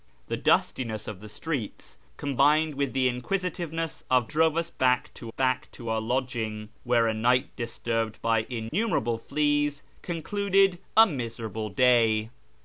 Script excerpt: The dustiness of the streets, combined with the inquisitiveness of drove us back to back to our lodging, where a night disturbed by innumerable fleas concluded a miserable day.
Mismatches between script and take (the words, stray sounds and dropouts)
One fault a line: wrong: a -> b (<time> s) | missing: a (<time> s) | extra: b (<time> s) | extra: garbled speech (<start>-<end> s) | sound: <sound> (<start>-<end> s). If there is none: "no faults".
sound: dropout (8.7-8.7 s)